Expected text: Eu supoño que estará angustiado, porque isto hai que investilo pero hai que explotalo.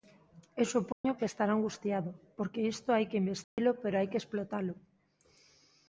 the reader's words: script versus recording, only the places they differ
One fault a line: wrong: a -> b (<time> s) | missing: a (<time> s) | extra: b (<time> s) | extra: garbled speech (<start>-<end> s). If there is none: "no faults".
no faults